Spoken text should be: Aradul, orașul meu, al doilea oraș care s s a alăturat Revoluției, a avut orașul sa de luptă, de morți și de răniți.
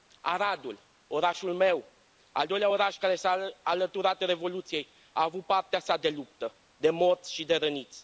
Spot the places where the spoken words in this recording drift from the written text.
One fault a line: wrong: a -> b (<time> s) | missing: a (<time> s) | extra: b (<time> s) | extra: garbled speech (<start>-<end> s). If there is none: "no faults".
missing: s (3.2 s)
wrong: orașul -> partea (5.4 s)